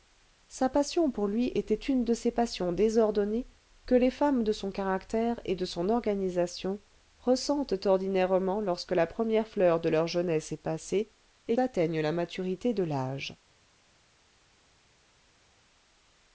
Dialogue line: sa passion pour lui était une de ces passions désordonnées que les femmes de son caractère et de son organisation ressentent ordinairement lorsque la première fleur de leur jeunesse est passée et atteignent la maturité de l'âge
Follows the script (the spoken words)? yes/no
yes